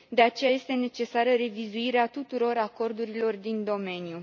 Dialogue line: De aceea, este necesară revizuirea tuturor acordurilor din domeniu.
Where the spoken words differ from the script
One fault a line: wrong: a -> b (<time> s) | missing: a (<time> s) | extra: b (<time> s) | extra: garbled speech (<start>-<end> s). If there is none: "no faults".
no faults